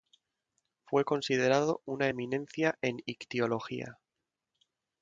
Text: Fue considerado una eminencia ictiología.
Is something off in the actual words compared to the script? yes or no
yes